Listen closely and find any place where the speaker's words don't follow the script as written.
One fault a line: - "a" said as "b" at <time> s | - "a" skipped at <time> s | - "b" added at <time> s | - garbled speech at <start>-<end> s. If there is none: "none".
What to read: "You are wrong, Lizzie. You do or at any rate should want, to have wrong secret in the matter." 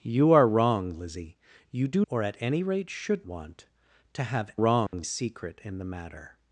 none